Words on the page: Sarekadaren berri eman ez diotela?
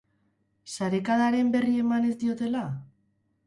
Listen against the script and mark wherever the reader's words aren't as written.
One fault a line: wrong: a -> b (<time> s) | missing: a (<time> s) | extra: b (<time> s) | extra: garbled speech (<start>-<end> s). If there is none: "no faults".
no faults